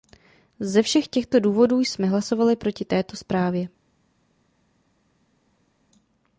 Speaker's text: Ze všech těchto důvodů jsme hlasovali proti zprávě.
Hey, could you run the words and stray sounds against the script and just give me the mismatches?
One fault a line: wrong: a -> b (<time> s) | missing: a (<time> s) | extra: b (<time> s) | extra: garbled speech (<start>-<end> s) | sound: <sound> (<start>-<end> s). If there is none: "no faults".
extra: této (2.9 s)